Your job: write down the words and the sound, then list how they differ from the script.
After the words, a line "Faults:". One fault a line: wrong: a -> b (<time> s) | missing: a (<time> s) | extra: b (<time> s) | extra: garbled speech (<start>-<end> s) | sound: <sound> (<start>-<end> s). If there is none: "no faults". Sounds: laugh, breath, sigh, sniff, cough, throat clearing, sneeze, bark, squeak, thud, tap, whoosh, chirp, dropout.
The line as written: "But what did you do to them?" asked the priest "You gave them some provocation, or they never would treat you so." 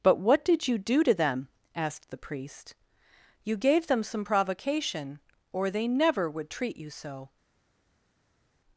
"But what did you do to them?" asked the priest "You gave them some provocation, or they never would treat you so."
Faults:
no faults